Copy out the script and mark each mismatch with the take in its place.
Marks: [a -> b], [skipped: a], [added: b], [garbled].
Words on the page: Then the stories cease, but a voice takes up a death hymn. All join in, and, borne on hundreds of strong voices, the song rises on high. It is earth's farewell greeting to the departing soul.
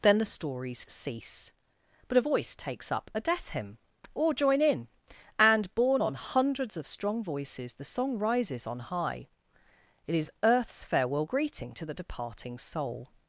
Then the stories cease, but a voice takes up a death hymn. [All -> Or] join in, and, borne on hundreds of strong voices, the song rises on high. It is earth's farewell greeting to the departing soul.